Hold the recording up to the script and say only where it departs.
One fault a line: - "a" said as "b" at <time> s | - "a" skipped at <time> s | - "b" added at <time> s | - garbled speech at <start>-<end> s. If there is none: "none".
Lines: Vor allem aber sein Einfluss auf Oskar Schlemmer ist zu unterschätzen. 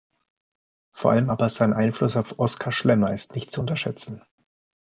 - "nicht" added at 3.3 s